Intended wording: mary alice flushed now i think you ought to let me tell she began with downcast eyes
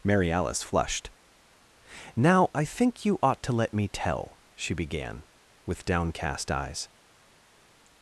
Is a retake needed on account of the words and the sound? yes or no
no